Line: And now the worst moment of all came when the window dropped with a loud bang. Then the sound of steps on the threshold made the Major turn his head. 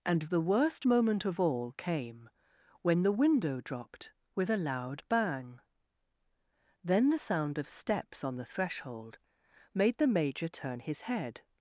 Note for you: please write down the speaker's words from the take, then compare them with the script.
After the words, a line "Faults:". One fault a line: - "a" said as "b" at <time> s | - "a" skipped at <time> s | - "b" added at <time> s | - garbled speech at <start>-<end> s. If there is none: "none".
And the worst moment of all came when the window dropped with a loud bang. Then the sound of steps on the threshold made the Major turn his head.
Faults:
- "now" skipped at 0.2 s